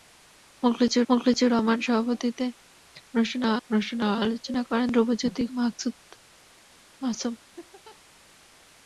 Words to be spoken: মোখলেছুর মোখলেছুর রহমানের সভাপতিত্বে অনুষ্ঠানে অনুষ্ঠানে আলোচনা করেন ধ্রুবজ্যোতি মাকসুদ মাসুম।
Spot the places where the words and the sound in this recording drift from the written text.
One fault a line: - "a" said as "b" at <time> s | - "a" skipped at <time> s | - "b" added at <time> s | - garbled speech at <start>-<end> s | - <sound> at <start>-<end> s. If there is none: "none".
- laugh at 7.6-8.0 s